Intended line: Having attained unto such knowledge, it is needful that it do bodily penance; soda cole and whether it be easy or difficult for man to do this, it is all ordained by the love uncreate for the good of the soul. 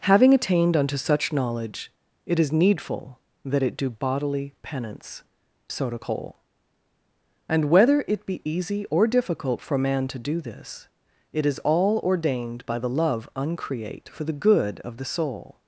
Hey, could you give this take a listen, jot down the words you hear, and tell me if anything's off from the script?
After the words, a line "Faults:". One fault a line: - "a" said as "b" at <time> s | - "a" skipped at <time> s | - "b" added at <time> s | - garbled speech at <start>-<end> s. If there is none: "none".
Having attained unto such knowledge, it is needful that it do bodily penance; soda cole and whether it be easy or difficult for man to do this, it is all ordained by the love uncreate for the good of the soul.
Faults:
none